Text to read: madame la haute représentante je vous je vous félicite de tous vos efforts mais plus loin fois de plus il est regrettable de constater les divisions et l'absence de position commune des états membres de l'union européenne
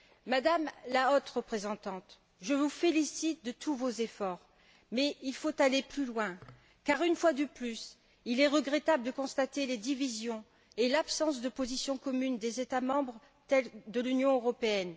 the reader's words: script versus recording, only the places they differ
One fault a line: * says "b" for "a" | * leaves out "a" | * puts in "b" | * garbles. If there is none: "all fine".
* leaves out "je vous"
* puts in "il faut aller"
* puts in "car une"